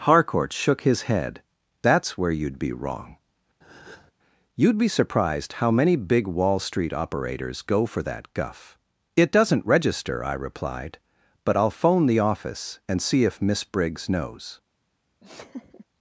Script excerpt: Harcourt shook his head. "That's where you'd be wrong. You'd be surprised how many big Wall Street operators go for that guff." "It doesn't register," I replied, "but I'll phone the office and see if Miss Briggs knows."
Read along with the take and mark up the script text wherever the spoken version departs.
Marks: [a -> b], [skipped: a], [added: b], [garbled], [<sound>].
Harcourt shook his head. "That's where you'd be wrong. [breath] You'd be surprised how many big Wall Street operators go for that guff." "It doesn't register," I replied, "but I'll phone the office and see if Miss Briggs knows." [laugh]